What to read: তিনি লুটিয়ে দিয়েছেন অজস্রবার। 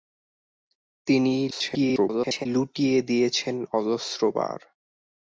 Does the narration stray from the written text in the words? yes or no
yes